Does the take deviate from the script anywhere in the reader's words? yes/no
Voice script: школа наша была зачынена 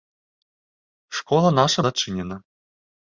yes